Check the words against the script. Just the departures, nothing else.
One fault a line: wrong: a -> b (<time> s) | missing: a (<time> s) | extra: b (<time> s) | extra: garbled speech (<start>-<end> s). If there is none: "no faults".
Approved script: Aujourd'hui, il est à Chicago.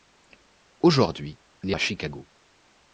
no faults